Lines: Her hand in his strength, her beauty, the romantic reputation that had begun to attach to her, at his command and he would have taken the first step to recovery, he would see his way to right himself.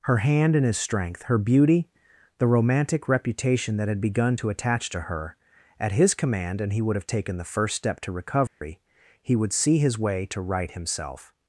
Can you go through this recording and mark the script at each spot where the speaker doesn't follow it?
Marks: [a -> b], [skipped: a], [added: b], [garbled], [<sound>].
Her hand in his strength, her beauty, the romantic reputation that had begun to attach to her, at his command and he would have taken the first step to recovery, [dropout] he would see his way to right himself.